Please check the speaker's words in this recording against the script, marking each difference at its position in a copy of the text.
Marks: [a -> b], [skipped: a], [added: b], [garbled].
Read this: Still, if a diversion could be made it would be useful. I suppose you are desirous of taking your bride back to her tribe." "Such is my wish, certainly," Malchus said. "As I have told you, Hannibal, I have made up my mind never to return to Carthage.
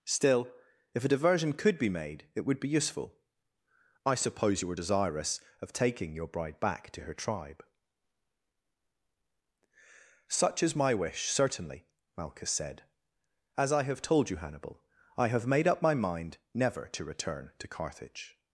Still, if a diversion could be made it would be useful. I suppose you [are -> were] desirous of taking your bride back to her tribe." "Such is my wish, certainly," Malchus said. "As I have told you, Hannibal, I have made up my mind never to return to Carthage.